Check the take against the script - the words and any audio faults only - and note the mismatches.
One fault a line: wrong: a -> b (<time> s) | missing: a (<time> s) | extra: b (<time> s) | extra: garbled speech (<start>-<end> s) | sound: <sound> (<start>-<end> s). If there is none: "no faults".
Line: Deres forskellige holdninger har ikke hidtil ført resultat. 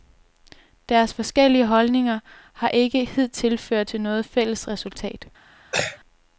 extra: til noget fælles (3.8 s)
sound: throat clearing (5.7-6.0 s)